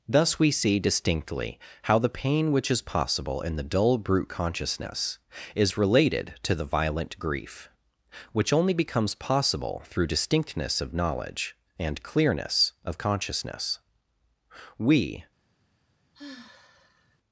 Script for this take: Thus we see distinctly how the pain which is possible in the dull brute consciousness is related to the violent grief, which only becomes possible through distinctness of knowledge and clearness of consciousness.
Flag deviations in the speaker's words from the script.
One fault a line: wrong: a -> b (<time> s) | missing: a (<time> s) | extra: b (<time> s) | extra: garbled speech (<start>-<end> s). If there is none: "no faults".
extra: We (14.8 s)